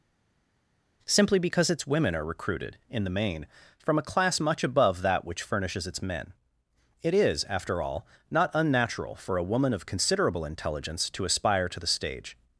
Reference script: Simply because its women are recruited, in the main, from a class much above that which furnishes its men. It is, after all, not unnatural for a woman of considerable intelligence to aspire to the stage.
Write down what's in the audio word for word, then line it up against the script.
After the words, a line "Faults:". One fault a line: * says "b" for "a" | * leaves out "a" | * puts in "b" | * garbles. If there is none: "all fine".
Simply because its women are recruited, in the main, from a class much above that which furnishes its men. It is, after all, not unnatural for a woman of considerable intelligence to aspire to the stage.
Faults:
all fine